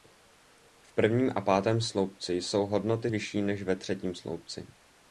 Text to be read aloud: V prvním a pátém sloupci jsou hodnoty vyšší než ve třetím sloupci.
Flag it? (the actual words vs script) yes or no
no